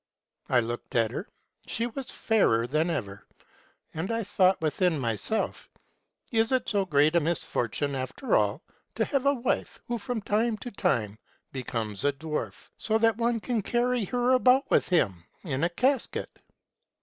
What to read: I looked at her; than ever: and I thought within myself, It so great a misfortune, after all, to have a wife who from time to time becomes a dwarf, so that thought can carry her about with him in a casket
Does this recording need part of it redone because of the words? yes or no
yes